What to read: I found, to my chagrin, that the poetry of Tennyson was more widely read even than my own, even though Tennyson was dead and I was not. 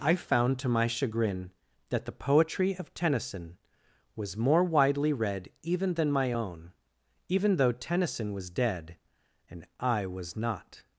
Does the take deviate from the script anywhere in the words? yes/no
no